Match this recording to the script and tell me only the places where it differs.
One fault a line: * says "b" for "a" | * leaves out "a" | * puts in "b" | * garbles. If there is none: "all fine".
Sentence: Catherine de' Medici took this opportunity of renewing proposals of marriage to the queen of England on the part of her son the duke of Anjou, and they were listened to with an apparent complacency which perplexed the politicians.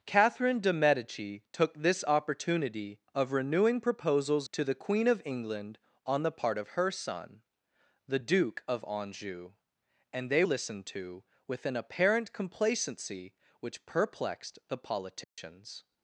* leaves out "of marriage"
* leaves out "were"